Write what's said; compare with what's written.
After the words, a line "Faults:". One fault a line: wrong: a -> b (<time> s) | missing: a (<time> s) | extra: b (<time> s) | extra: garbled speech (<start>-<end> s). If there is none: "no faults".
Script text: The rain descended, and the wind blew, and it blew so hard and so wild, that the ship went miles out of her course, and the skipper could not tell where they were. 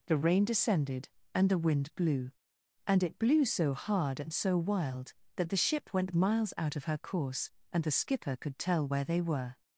The rain descended, and the wind blew, and it blew so hard and so wild, that the ship went miles out of her course, and the skipper could tell where they were.
Faults:
missing: not (8.6 s)